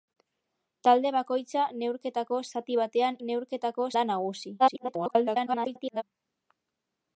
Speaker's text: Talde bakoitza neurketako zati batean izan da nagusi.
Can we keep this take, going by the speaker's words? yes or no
no